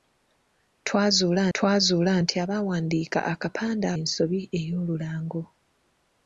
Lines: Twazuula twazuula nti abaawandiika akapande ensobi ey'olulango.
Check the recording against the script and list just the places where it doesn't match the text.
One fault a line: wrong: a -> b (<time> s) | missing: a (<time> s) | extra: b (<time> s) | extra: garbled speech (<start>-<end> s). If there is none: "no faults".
no faults